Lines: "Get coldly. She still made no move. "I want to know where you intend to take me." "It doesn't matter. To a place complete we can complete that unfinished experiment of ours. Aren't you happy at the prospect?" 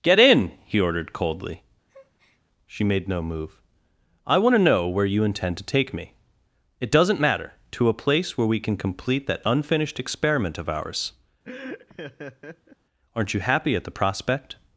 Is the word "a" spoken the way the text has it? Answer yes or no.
yes